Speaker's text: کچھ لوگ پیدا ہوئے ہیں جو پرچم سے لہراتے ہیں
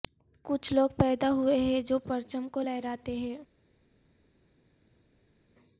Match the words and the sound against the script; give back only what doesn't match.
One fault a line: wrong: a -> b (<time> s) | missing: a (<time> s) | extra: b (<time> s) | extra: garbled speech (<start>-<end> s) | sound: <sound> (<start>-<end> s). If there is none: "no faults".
wrong: سے -> کو (2.5 s)